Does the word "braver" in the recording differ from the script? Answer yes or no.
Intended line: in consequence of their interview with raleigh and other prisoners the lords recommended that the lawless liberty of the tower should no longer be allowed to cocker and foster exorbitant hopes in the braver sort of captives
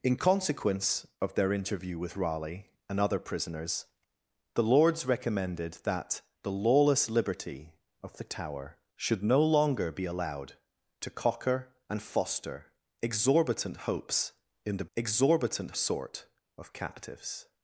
yes